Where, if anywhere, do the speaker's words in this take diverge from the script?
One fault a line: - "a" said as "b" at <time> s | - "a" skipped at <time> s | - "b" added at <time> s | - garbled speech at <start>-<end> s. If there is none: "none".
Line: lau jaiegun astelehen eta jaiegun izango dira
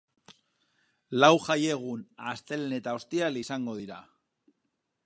- "jaiegun" said as "ostiral" at 3.0 s